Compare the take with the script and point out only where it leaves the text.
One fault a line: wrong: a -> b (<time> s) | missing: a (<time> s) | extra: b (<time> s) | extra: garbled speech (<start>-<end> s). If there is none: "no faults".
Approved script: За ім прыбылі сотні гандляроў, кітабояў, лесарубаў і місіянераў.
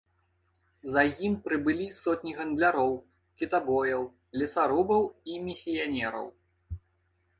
no faults